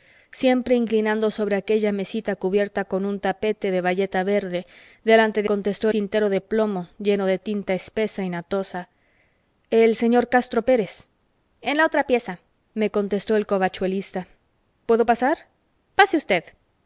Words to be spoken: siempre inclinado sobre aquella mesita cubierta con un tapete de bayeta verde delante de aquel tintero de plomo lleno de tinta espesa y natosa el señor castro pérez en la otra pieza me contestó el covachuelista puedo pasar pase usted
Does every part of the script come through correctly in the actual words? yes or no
no